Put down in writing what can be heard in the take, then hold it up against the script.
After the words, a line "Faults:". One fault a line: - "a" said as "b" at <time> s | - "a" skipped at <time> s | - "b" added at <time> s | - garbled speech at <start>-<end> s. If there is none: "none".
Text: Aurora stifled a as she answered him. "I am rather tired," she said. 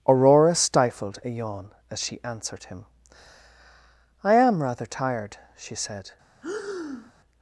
Aurora stifled a yawn as she answered him. "I am rather tired," she said.
Faults:
- "yawn" added at 1.3 s